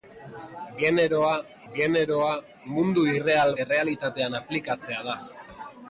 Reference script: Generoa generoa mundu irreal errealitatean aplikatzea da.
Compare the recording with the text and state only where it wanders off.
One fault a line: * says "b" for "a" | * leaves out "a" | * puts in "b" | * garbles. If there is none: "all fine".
all fine